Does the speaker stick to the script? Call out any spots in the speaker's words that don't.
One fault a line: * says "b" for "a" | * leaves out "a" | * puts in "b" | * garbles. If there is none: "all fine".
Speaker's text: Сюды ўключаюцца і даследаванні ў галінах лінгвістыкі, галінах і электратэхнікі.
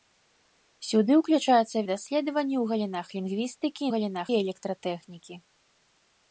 all fine